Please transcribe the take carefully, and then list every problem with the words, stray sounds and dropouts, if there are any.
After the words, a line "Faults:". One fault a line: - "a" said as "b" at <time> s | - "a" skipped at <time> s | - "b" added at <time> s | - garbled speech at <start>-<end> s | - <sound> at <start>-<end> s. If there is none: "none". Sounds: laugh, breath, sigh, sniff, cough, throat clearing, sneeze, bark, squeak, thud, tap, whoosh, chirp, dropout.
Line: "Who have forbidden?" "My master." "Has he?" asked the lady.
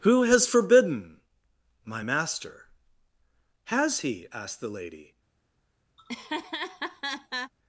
"Who has forbidden?" "My master." "Has he?" asked the lady.
Faults:
- "have" said as "has" at 0.2 s
- laugh at 6.0-7.5 s